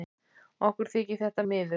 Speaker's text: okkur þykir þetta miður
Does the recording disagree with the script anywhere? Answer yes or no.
no